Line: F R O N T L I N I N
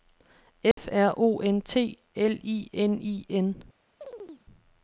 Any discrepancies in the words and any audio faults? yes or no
yes